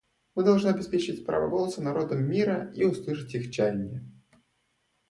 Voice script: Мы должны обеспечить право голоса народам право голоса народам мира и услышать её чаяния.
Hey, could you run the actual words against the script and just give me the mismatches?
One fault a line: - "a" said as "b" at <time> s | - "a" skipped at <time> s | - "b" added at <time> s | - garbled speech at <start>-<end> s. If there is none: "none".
- "право голоса народам" skipped at 2.2 s
- "её" said as "их" at 3.3 s